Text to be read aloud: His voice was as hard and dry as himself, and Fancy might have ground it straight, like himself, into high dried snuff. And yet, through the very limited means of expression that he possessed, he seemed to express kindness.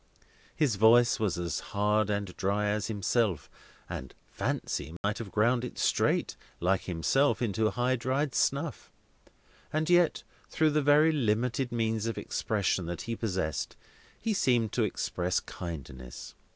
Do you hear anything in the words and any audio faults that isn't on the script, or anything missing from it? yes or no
yes